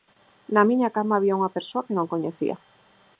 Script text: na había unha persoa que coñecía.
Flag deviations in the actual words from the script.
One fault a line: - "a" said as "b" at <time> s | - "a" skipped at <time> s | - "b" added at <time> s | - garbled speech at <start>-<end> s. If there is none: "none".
- "miña cama" added at 0.7 s
- "non" added at 2.0 s